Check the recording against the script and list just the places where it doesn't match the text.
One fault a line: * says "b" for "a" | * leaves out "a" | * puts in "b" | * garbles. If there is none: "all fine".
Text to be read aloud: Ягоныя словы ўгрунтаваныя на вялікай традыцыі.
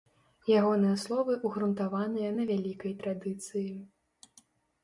all fine